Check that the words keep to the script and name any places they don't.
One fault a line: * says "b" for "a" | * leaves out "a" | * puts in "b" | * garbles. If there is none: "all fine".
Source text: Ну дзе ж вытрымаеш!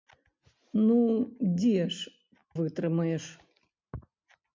all fine